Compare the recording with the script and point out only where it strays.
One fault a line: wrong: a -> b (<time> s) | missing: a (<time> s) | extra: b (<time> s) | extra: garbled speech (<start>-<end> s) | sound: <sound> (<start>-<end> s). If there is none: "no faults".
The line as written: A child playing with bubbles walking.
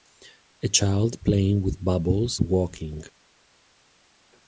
no faults